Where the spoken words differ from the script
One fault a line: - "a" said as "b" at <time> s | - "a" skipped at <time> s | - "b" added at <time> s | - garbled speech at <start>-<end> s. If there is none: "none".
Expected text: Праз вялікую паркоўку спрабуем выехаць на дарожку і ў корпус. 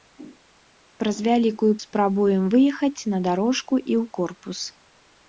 - "паркоўку" skipped at 1.7 s